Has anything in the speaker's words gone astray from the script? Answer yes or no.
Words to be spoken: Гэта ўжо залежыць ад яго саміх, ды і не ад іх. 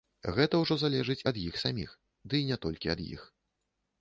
yes